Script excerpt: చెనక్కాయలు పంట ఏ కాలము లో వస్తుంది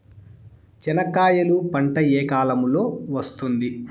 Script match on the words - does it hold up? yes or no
yes